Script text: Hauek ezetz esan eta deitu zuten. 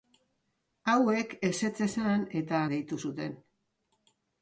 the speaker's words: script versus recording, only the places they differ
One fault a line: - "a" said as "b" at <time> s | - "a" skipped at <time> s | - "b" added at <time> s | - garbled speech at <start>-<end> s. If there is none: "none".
none